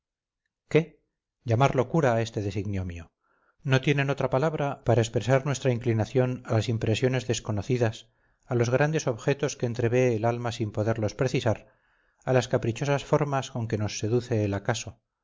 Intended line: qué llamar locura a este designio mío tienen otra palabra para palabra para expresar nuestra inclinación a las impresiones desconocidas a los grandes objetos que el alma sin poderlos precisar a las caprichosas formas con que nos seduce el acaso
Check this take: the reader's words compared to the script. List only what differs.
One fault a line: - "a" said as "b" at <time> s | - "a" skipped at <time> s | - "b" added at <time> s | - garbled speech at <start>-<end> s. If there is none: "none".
- "no" added at 3.6 s
- "palabra para" skipped at 5.0 s
- "entrevé" added at 9.7 s